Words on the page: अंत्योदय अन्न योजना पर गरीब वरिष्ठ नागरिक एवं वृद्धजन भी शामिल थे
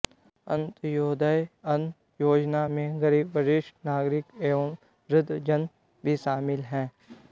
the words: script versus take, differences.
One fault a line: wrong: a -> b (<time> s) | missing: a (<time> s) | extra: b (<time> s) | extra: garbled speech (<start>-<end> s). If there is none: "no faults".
wrong: पर -> में (2.7 s)
wrong: थे -> हैं (6.7 s)